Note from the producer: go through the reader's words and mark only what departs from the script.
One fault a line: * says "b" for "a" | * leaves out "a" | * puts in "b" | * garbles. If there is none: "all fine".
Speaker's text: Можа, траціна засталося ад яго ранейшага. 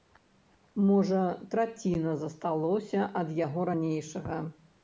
all fine